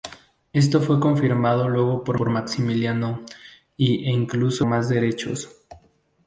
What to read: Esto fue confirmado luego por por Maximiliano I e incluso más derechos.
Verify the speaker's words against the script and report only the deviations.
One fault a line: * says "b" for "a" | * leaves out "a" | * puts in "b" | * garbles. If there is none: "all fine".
all fine